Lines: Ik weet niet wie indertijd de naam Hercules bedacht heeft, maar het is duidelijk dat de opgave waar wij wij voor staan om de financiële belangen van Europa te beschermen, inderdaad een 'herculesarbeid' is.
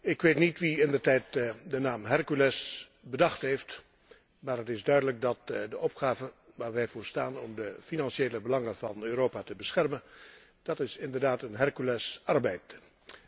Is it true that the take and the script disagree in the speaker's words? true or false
true